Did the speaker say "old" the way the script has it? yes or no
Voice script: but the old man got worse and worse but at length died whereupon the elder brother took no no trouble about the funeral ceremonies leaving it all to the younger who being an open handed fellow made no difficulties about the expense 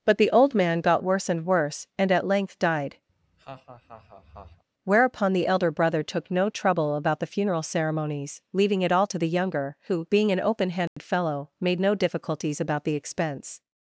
yes